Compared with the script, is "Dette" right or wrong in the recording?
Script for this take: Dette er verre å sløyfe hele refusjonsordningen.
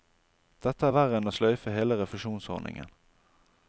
right